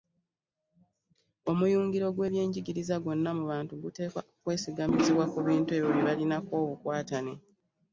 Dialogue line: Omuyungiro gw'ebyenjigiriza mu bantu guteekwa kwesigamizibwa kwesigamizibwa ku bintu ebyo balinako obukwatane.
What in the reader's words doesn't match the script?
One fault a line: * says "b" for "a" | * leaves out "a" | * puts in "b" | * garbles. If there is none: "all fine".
* puts in "gwonna"
* leaves out "kwesigamizibwa"
* puts in "bye"